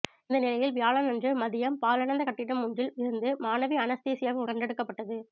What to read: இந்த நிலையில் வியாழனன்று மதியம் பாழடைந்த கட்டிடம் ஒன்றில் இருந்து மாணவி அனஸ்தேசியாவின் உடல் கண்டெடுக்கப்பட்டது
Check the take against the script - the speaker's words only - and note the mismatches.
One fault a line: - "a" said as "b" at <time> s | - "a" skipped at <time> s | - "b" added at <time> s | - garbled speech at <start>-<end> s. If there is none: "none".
- "உடல்" skipped at 4.4 s